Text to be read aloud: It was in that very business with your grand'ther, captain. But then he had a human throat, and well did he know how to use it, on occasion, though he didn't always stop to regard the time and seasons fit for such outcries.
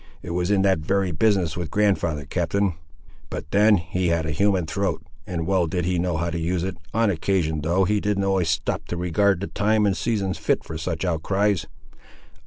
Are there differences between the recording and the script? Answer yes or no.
yes